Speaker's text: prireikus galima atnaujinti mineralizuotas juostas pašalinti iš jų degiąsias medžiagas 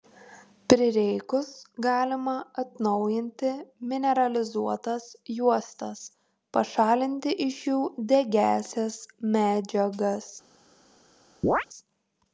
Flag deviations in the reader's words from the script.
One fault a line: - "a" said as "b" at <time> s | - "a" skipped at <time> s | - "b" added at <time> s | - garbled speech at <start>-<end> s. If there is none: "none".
none